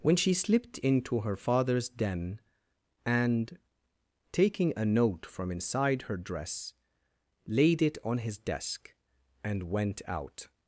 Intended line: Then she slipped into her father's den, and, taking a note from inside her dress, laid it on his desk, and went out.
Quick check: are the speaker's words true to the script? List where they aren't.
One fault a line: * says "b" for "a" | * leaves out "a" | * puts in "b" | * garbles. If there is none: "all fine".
* says "When" for "Then"